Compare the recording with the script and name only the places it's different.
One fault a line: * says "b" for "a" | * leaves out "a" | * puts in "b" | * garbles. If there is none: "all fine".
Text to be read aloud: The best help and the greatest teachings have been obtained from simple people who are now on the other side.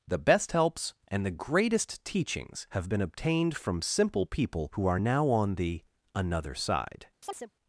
* says "helps" for "help"
* says "another" for "other"